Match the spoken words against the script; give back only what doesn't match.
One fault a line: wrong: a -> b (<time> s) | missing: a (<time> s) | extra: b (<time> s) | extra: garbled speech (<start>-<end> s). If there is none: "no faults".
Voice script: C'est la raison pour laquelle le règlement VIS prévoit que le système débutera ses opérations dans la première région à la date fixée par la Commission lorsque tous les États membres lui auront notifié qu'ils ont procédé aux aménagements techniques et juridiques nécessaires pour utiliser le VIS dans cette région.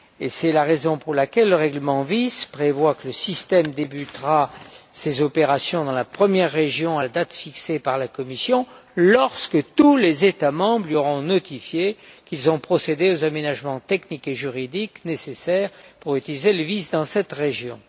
no faults